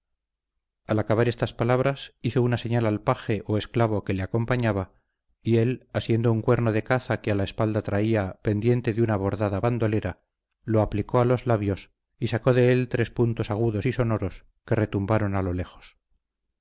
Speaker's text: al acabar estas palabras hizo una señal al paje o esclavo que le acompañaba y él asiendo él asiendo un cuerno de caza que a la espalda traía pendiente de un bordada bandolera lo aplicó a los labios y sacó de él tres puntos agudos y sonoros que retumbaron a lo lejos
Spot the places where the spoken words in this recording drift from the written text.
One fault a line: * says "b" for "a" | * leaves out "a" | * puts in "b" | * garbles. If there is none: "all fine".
* leaves out "él asiendo"
* says "una" for "un"